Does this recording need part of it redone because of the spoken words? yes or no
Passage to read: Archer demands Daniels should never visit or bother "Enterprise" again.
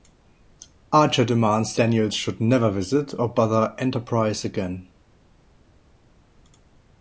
no